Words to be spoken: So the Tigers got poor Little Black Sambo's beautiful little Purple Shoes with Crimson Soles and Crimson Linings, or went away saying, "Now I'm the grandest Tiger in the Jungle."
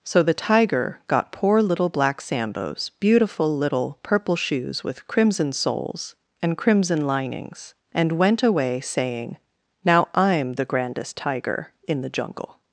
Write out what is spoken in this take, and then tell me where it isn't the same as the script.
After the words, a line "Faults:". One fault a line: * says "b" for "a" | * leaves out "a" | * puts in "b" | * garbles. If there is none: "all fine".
So the Tiger got poor Little Black Sambo's beautiful little Purple Shoes with Crimson Soles and Crimson Linings, and went away saying, "Now I'm the grandest Tiger in the Jungle."
Faults:
* says "Tiger" for "Tigers"
* says "and" for "or"